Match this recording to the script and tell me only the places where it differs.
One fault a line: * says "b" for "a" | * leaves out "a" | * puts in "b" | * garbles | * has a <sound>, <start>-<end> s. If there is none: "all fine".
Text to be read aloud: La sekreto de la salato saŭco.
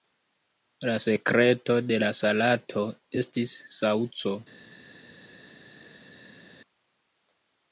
* puts in "estis"